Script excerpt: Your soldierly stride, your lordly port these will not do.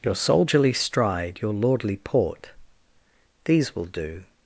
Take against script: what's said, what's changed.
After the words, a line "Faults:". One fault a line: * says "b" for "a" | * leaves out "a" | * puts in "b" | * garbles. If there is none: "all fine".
Your soldierly stride, your lordly port these will do.
Faults:
* leaves out "not"